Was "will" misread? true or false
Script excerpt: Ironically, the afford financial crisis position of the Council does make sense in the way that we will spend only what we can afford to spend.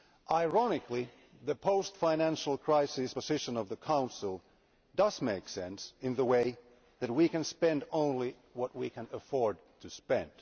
true